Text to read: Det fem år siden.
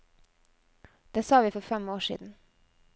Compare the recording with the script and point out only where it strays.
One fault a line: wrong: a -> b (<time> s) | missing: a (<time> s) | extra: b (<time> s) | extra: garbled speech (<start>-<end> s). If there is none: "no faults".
extra: sa vi for (1.2 s)